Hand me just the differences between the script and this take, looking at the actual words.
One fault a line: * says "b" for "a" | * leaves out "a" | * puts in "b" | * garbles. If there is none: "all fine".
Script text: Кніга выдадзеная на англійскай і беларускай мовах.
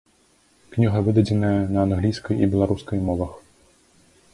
all fine